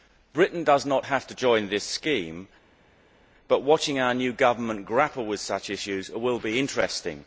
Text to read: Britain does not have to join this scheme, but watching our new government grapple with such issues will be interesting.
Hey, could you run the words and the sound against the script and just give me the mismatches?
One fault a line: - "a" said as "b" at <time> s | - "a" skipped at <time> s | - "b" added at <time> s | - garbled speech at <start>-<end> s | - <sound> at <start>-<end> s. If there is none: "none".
none